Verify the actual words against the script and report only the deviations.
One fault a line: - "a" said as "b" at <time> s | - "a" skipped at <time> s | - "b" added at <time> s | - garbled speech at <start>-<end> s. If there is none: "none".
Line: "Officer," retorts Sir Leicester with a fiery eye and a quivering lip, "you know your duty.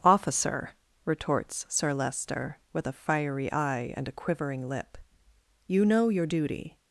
none